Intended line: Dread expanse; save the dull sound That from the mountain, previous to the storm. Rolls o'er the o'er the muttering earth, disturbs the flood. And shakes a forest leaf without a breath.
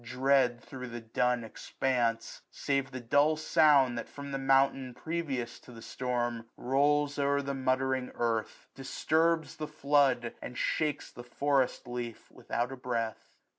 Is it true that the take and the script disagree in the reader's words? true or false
true